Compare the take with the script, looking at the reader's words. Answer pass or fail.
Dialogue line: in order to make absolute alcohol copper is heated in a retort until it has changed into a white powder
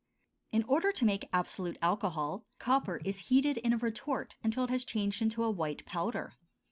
pass